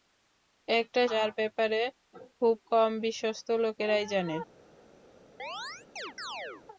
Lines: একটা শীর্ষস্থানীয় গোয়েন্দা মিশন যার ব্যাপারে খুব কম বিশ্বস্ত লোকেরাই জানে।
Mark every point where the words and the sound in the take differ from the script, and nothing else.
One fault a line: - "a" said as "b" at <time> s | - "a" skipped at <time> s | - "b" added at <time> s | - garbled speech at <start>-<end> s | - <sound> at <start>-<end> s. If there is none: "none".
- "শীর্ষস্থানীয় গোয়েন্দা মিশন" skipped at 1.0 s
- chirp at 5.4-6.7 s